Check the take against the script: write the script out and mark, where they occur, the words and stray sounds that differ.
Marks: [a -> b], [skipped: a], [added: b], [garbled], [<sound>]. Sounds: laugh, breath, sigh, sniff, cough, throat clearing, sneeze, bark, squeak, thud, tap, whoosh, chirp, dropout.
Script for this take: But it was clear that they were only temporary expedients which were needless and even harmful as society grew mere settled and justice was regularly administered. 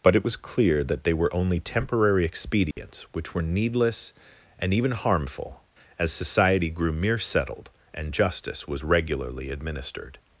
But it was clear that they were only temporary expedients [dropout] which were needless and even harmful as society grew mere settled and justice was regularly administered.